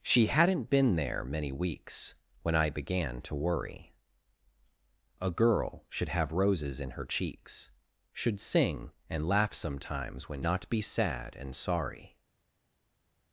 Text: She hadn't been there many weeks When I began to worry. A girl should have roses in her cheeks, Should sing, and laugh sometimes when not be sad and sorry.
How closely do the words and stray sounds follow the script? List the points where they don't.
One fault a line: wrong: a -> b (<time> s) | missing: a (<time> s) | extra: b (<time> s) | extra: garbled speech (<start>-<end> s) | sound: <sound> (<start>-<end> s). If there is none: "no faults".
no faults